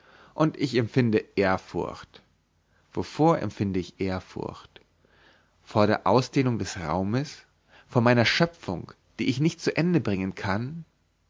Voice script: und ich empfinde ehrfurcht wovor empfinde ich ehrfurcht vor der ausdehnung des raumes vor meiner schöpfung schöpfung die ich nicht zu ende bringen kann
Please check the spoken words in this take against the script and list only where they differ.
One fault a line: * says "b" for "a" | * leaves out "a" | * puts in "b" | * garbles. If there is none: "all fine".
* leaves out "schöpfung"